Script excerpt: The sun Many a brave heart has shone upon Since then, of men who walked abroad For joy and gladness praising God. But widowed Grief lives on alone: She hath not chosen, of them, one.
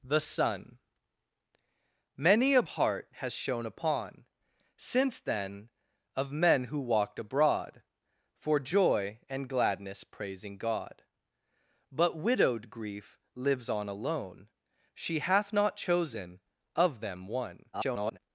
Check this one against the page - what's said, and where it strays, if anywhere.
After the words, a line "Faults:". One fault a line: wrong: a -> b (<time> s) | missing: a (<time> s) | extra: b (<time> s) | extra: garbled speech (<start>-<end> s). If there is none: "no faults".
The sun Many a heart has shone upon Since then, of men who walked abroad For joy and gladness praising God. But widowed Grief lives on alone: She hath not chosen, of them, one. [garbled]
Faults:
missing: brave (2.6 s)
extra: garbled speech (17.7-18.2 s)